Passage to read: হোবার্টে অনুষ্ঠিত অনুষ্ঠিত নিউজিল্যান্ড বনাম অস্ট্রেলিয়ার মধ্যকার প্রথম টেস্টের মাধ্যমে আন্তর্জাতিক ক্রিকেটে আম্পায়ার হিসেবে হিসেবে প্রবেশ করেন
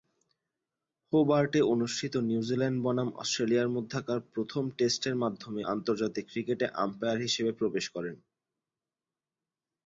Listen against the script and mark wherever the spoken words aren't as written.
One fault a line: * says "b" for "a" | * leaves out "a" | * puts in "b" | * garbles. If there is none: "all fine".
* leaves out "অনুষ্ঠিত"
* leaves out "হিসেবে"